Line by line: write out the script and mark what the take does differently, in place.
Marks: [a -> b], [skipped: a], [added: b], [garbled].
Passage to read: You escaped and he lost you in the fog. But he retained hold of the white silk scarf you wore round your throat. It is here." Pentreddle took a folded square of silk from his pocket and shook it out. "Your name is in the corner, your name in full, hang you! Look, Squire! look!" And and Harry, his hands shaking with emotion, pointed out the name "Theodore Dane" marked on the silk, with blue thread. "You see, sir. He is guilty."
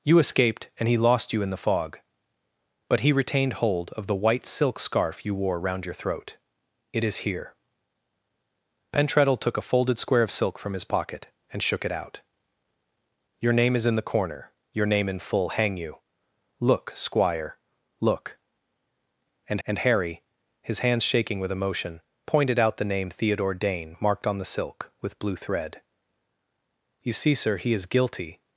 You escaped and he lost you in the fog. But he retained hold of the white silk scarf you wore round your throat. It is here." Pentreddle took a folded square of silk from his pocket and shook it out. "Your name is in the corner, your name in full, hang you! Look, Squire! look!" And and Harry, his hands shaking with emotion, pointed out the name "Theodore Dane" marked on the silk, with blue thread. "You see, sir. He is guilty."